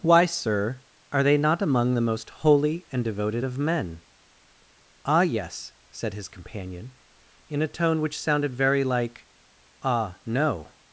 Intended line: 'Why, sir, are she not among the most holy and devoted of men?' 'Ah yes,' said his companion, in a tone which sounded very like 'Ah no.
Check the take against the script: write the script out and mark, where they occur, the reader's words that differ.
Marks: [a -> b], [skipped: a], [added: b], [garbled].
'Why, sir, are [she -> they] not among the most holy and devoted of men?' 'Ah yes,' said his companion, in a tone which sounded very like 'Ah no.